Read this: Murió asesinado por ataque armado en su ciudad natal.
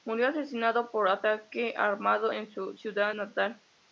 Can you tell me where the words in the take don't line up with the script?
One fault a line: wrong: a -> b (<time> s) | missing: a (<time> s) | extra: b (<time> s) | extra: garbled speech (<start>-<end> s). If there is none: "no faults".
no faults